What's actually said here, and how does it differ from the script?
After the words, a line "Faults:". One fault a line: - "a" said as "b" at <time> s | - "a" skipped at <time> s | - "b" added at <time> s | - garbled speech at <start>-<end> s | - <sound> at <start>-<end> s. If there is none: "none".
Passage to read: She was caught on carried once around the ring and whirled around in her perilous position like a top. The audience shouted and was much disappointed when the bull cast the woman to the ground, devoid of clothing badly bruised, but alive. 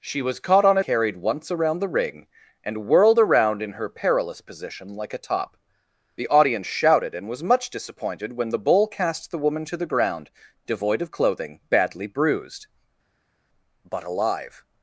She was caught on carried once around the ring and whirled around in her perilous position like a top. The audience shouted and was much disappointed when the bull cast the woman to the ground, devoid of clothing badly bruised, but alive.
Faults:
none